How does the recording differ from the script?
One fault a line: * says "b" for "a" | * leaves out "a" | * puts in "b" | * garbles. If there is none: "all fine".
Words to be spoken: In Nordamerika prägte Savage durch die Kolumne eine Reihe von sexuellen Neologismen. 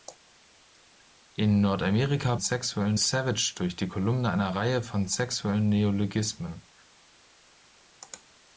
* says "sexuellen" for "prägte"